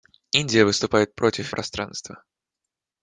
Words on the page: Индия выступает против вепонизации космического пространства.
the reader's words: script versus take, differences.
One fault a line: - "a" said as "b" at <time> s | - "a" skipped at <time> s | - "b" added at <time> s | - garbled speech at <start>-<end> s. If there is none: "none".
- "вепонизации космического" skipped at 1.5 s